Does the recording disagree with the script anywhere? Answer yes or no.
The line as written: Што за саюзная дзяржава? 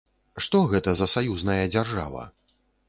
yes